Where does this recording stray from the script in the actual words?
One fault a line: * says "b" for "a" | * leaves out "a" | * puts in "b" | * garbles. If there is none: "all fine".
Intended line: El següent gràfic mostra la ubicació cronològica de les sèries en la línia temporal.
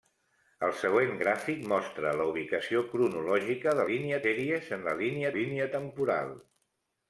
* says "línia" for "les"
* puts in "línia"